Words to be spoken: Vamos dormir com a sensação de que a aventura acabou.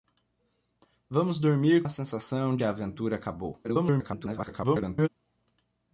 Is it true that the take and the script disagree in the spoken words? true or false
true